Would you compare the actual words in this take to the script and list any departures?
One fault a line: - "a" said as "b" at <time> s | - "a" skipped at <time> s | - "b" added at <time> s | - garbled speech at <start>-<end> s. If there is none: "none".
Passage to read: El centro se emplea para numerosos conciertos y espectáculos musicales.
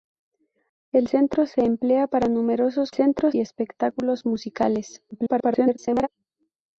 - "conciertos" said as "centro" at 2.9 s
- garbled speech at 5.1-6.1 s